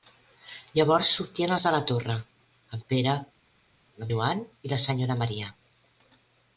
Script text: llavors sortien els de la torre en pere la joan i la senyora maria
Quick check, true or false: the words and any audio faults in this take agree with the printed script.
true